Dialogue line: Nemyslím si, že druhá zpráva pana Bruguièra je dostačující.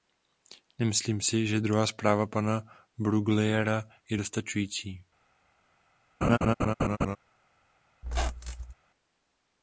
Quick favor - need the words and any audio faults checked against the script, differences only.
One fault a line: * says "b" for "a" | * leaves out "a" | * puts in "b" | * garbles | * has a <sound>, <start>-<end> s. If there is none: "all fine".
* has a laugh, 6.2-7.2 s
* has a squeak, 8.0-8.7 s